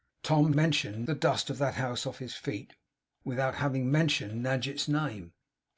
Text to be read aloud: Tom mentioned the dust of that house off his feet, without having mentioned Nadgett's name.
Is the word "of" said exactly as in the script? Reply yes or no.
yes